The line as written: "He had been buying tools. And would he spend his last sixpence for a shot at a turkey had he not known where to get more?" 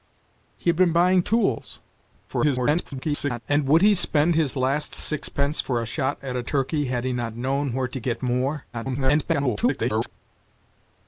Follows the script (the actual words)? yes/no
no